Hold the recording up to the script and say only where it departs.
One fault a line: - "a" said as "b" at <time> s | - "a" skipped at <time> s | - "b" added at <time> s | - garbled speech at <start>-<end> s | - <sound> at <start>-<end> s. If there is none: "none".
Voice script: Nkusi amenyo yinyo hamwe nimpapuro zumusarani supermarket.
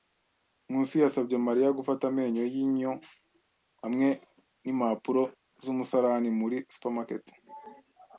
- "yasabye Mariya gufata" added at 1.0 s
- "muri" added at 6.4 s